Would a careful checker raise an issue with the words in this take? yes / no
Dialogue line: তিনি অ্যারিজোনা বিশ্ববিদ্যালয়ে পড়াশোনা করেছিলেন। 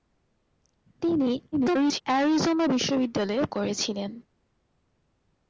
yes